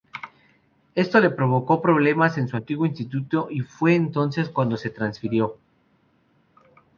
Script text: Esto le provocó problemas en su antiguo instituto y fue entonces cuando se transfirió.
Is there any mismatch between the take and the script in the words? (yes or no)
no